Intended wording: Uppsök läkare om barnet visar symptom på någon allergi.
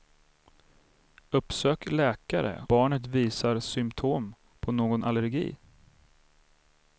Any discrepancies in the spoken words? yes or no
yes